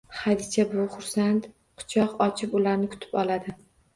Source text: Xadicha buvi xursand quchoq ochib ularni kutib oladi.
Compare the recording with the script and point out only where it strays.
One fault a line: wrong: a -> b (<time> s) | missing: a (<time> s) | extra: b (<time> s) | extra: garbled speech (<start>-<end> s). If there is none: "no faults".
no faults